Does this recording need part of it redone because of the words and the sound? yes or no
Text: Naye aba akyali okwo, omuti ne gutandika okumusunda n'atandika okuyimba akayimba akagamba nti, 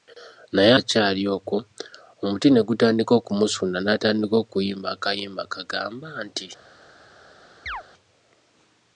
yes